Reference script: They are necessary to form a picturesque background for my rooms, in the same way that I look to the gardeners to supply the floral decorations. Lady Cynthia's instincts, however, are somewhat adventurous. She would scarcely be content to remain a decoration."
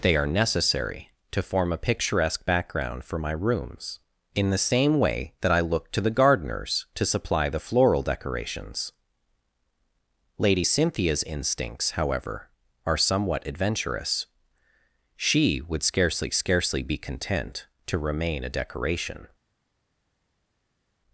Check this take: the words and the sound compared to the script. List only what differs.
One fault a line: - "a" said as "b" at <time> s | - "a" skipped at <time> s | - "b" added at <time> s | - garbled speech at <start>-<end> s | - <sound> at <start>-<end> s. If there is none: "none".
- "scarcely" added at 16.3 s